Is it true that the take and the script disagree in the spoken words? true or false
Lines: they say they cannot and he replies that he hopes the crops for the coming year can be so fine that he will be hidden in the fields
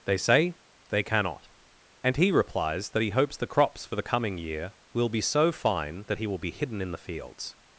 true